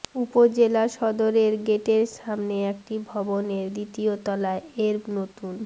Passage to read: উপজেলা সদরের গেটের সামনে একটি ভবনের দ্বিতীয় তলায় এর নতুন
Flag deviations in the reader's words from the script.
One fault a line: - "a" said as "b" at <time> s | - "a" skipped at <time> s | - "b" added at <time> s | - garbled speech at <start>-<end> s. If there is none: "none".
none